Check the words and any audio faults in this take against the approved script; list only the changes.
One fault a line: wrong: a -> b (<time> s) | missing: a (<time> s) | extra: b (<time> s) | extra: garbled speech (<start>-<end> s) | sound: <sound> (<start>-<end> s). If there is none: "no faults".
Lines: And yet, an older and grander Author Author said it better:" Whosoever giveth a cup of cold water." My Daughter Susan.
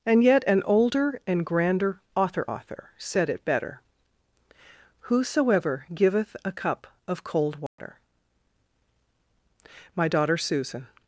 sound: dropout (7.7-7.8 s)